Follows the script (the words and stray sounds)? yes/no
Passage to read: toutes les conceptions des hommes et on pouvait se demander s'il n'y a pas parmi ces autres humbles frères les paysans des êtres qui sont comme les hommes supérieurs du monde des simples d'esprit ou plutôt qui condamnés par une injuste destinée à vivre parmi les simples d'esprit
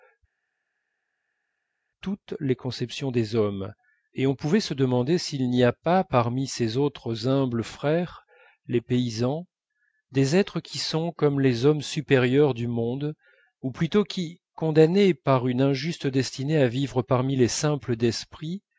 no